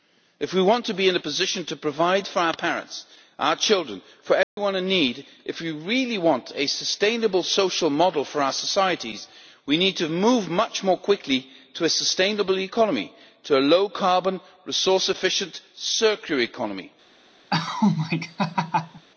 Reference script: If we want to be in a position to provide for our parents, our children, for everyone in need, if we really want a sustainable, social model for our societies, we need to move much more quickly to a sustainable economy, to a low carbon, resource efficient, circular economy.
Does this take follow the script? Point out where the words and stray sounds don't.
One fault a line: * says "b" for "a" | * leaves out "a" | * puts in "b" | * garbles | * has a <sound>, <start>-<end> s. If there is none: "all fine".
* has a dropout, 4.4-4.6 s
* has a laugh, 17.5-19.0 s